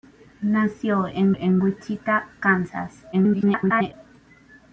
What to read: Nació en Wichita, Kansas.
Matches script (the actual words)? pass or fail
fail